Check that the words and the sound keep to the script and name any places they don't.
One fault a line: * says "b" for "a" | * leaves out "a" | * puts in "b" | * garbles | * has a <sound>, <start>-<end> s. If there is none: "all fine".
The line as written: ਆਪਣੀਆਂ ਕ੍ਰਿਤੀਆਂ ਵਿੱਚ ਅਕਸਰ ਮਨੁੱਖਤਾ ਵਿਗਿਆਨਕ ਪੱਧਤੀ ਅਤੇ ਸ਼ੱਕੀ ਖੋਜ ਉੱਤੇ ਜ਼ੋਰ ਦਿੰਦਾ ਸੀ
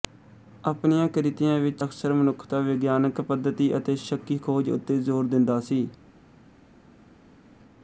all fine